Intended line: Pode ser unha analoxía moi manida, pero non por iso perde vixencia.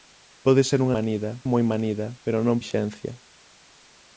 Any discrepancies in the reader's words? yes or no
yes